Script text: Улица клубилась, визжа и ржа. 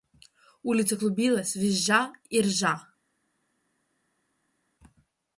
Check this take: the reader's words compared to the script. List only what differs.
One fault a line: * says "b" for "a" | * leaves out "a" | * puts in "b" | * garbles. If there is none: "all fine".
all fine